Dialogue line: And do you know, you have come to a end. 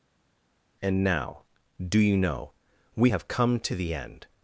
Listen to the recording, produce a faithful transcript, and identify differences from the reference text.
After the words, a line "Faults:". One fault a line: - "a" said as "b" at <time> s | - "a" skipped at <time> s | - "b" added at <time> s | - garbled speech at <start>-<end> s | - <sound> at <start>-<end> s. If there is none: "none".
And now, do you know, we have come to the end.
Faults:
- "now" added at 1.0 s
- "you" said as "we" at 2.9 s
- "a" said as "the" at 3.7 s